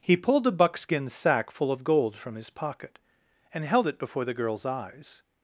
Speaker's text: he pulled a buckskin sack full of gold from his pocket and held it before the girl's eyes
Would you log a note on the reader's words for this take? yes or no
no